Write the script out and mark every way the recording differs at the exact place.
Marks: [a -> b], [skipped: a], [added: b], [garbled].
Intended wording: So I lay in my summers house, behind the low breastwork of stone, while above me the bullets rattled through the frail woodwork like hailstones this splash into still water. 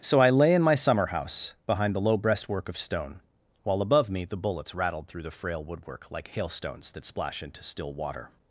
So I lay in my [summers -> summer] house, behind the low breastwork of stone, while above me the bullets rattled through the frail woodwork like hailstones [this -> that] splash into still water.